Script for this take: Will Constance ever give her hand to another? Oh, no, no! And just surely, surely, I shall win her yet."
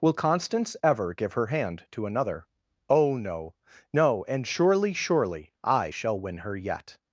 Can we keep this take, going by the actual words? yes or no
no